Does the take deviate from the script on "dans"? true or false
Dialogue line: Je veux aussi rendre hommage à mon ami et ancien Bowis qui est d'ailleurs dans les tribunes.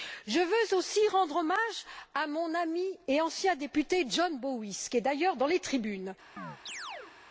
false